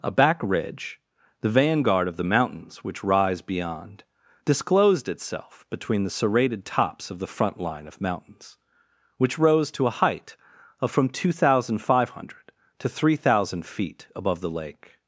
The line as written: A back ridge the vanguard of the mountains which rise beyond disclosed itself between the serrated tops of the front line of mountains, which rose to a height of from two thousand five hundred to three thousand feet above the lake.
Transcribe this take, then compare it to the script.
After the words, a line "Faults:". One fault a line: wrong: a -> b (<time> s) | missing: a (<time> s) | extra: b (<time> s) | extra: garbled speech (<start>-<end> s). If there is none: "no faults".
A back ridge the vanguard of the mountains which rise beyond disclosed itself between the serrated tops of the front line of mountains, which rose to a height of from two thousand five hundred to three thousand feet above the lake.
Faults:
no faults